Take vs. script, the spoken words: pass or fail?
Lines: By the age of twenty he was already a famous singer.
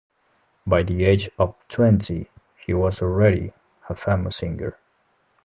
pass